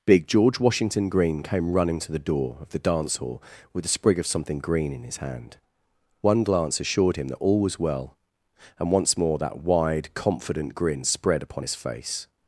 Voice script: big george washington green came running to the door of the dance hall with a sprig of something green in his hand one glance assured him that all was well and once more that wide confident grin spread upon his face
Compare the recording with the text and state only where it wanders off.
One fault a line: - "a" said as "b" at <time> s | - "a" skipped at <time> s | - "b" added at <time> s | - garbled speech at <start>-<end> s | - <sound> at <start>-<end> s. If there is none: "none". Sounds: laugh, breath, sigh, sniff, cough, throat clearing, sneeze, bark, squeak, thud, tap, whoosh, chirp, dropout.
none